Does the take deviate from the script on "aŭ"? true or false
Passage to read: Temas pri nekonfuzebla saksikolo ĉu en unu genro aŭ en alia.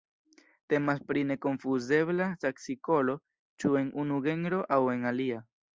false